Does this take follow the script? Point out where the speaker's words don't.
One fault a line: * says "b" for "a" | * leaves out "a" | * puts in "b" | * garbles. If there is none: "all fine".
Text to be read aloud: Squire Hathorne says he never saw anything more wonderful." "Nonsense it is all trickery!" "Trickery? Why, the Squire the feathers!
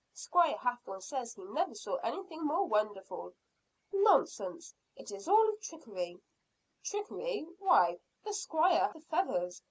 all fine